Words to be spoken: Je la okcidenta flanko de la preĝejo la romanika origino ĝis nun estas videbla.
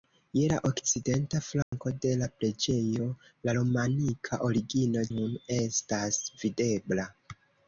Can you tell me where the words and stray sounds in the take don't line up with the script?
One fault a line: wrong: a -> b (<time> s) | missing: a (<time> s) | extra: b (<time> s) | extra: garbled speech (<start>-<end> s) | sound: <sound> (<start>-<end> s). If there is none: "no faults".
sound: dropout (1.6-1.7 s)
missing: ĝis (5.0 s)